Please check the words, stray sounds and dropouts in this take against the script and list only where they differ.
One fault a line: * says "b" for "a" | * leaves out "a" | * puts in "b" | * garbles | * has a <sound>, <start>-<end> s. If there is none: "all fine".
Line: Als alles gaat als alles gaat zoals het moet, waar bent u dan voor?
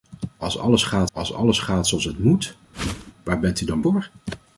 * has a whoosh, 2.7-3.1 s